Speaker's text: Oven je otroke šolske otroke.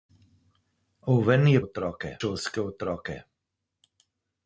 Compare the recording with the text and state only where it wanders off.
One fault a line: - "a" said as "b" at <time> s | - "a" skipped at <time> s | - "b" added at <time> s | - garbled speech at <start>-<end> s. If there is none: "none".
none